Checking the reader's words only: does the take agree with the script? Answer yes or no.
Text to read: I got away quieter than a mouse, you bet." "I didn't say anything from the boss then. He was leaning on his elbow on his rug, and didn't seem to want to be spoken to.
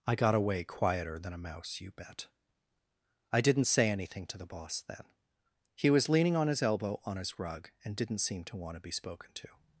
no